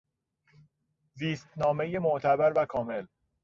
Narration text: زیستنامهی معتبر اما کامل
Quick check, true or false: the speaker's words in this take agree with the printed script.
false